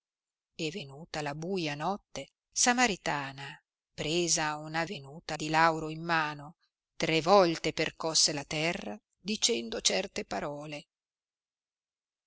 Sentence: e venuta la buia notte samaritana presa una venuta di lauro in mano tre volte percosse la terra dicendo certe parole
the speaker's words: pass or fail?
pass